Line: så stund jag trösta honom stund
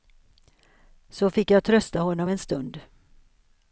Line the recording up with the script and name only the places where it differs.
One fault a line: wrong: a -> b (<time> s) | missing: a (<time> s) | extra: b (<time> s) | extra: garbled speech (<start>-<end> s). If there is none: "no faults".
wrong: stund -> fick (1.3 s)
extra: en (2.3 s)